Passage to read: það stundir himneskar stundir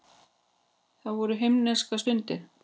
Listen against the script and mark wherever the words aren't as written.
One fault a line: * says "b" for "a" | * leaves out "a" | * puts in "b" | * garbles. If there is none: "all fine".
* says "voru" for "stundir"